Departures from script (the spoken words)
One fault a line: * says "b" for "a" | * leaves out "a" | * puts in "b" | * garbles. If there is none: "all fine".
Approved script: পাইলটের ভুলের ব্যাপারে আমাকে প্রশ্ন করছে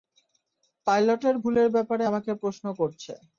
all fine